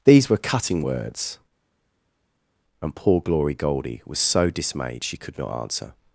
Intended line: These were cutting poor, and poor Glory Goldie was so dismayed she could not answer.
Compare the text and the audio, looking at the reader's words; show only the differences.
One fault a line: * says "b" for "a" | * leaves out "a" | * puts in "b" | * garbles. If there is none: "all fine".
* says "words" for "poor"